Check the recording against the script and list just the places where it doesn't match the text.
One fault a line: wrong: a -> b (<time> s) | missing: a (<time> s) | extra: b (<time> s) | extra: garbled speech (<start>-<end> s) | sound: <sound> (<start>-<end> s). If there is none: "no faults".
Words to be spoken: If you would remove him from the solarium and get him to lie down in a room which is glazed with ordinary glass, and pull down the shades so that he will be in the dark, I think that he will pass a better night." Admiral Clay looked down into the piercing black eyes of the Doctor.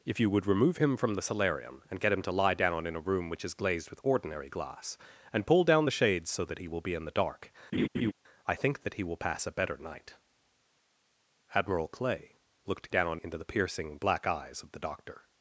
sound: laugh (7.7-8.1 s)